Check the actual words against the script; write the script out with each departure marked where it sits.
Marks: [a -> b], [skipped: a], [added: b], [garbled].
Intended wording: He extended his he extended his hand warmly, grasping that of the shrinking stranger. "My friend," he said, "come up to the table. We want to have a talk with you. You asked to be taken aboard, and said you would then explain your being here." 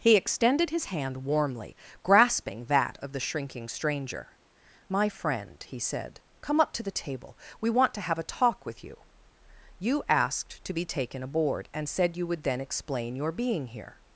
He extended his [skipped: he extended his] hand warmly, grasping that of the shrinking stranger. "My friend," he said, "come up to the table. We want to have a talk with you. You asked to be taken aboard, and said you would then explain your being here."